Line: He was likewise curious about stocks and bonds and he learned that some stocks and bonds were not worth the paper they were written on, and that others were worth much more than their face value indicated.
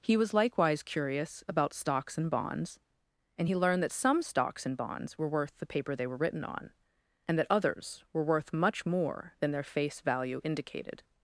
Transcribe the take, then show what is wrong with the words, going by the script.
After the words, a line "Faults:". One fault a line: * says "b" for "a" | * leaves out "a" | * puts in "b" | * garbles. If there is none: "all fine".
He was likewise curious about stocks and bonds and he learned that some stocks and bonds were worth the paper they were written on, and that others were worth much more than their face value indicated.
Faults:
* leaves out "not"